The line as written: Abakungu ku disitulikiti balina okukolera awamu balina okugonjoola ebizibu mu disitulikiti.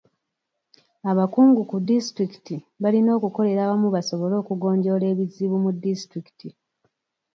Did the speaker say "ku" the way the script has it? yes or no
yes